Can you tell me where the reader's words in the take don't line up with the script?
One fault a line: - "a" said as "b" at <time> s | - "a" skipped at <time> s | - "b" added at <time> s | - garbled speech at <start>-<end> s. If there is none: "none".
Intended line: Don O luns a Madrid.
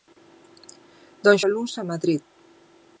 none